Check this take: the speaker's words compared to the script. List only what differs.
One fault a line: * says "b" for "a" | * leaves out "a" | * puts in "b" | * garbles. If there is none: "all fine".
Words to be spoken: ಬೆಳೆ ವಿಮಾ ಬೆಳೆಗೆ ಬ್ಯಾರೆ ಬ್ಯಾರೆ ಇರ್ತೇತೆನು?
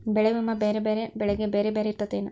* puts in "ಬ್ಯಾರೆ ಬ್ಯಾರೆ"